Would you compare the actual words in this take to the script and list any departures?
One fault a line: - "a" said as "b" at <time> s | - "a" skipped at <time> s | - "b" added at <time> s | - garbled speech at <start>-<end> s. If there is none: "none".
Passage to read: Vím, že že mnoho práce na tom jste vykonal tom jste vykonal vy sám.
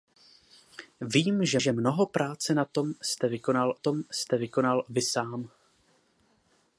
none